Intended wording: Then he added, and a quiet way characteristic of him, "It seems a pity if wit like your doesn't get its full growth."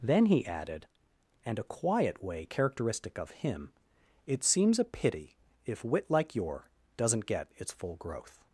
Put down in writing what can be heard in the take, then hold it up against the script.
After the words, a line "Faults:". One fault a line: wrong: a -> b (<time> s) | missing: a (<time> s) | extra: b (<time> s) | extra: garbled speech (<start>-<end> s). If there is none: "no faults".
Then he added, and a quiet way characteristic of him, "It seems a pity if wit like your doesn't get its full growth."
Faults:
no faults